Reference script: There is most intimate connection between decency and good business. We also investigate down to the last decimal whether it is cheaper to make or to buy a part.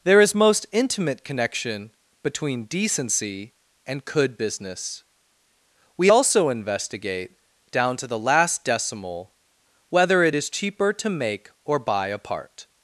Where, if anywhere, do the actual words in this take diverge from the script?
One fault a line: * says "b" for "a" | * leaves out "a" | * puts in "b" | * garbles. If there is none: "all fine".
* says "could" for "good"
* leaves out "to"